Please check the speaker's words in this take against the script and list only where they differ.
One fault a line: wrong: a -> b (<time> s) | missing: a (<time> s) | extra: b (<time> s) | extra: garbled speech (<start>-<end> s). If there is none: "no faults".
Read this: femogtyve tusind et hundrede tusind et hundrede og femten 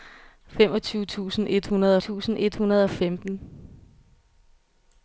no faults